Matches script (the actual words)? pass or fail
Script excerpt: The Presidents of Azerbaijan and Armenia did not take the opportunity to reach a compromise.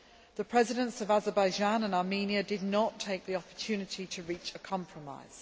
pass